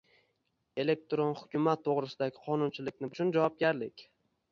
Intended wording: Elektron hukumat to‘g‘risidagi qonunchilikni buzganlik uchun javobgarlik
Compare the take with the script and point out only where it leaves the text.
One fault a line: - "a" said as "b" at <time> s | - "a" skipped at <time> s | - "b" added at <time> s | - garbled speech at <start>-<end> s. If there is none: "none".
- "buzganlik" skipped at 3.1 s